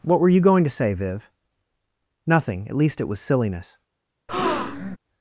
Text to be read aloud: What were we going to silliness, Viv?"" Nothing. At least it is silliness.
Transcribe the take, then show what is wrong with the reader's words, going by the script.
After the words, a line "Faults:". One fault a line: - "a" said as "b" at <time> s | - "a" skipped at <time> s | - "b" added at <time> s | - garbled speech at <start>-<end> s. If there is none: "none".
What were you going to say, Viv?"" Nothing. At least it was silliness.
Faults:
- "we" said as "you" at 0.3 s
- "silliness" said as "say" at 0.7 s
- "is" said as "was" at 3.1 s